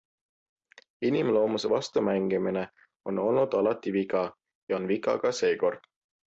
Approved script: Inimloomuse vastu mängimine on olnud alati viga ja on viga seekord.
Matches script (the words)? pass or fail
fail